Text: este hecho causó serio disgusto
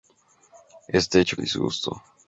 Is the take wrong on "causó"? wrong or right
wrong